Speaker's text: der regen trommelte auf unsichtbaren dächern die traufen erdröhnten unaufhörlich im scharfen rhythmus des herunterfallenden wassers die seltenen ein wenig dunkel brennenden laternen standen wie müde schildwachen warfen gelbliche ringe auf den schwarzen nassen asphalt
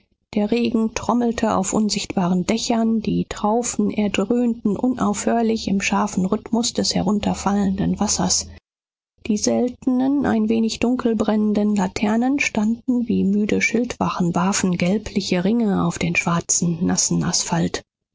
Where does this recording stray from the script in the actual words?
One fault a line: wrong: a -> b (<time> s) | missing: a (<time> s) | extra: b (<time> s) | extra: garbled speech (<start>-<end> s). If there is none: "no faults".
no faults